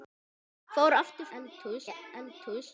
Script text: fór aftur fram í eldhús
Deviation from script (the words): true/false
true